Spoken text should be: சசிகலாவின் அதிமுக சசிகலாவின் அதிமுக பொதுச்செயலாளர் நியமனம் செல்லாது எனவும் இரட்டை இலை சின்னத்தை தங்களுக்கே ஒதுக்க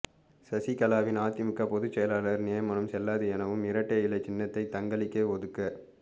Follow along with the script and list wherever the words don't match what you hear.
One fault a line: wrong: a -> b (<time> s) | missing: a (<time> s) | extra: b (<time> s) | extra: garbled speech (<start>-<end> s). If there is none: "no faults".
missing: சசிகலாவின் அதிமுக (1.7 s)